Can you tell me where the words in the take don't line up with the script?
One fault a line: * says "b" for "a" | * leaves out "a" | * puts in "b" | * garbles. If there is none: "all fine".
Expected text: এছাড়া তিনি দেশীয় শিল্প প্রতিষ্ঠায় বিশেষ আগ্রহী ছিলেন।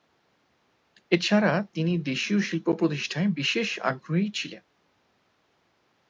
all fine